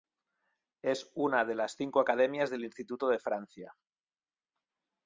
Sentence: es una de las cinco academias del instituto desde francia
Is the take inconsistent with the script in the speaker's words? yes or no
yes